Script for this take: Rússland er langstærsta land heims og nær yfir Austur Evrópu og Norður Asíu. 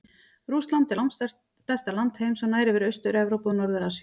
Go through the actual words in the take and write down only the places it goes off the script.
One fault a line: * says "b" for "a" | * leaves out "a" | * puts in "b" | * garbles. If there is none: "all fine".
all fine